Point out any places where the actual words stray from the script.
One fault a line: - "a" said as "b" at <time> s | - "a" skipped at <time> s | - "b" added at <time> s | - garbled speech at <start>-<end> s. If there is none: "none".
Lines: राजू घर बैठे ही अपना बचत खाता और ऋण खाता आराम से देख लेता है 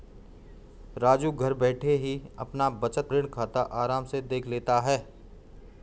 - "खाता और" skipped at 3.1 s